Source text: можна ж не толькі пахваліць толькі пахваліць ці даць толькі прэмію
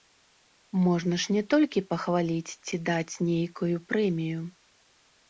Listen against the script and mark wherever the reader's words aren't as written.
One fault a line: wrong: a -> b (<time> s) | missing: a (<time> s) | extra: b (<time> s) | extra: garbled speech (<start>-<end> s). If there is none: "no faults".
missing: толькі пахваліць (2.5 s)
wrong: толькі -> нейкую (3.3 s)